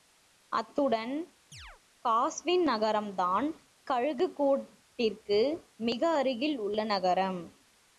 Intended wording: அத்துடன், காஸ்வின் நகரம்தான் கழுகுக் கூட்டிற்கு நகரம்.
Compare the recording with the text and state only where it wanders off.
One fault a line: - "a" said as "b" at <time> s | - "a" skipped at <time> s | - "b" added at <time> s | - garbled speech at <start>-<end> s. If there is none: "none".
- "மிக அருகில் உள்ள" added at 5.8 s